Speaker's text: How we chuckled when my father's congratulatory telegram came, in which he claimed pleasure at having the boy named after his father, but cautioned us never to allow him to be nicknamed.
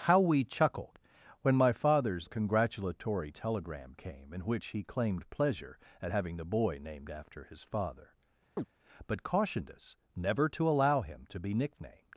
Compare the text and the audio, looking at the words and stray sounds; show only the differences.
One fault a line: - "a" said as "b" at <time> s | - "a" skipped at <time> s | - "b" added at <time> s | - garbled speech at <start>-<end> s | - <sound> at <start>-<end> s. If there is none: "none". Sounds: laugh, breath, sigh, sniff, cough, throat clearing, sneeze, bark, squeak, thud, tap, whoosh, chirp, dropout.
- chirp at 8.6-8.7 s